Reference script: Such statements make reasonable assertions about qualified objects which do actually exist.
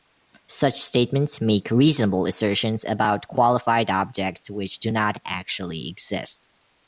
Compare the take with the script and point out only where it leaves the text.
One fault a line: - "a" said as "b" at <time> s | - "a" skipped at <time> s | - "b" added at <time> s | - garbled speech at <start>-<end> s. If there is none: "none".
- "not" added at 4.9 s